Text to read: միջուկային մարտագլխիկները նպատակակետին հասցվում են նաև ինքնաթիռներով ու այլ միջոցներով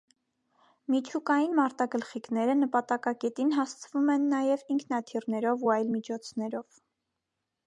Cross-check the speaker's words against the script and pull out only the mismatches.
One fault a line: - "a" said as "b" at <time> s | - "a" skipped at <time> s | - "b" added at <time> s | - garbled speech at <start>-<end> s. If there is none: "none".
none